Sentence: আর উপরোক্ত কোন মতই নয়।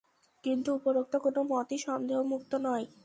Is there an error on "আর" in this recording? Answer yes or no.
yes